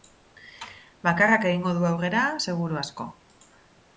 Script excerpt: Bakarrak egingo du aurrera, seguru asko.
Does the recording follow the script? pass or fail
pass